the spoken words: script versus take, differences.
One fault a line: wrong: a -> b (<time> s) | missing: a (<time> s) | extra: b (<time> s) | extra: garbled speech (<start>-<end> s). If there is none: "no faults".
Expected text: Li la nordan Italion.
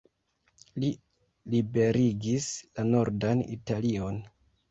extra: liberigis (1.6 s)